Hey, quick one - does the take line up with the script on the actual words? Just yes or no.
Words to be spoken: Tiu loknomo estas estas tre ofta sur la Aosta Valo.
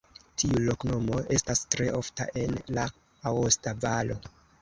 no